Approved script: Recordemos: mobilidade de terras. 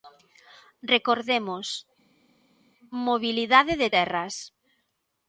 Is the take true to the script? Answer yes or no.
yes